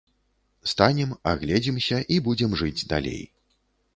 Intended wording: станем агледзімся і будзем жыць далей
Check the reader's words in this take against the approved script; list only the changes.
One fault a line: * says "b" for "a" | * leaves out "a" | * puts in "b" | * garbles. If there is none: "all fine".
all fine